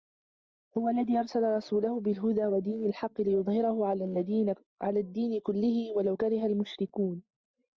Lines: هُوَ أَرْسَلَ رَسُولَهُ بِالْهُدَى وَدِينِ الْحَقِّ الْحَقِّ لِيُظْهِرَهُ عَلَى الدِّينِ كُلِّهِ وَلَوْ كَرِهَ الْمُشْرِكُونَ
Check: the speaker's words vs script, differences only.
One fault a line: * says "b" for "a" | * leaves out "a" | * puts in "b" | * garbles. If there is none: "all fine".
* puts in "الَّذِي"
* leaves out "الْحَقِّ"